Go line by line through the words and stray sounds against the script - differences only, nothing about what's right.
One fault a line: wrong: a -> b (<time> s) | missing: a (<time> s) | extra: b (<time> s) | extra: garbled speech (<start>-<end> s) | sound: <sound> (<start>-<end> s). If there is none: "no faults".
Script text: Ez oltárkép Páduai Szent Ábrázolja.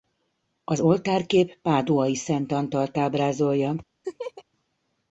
wrong: Ez -> Az (0.6 s)
extra: Antalt (2.5 s)
sound: laugh (4.0-4.4 s)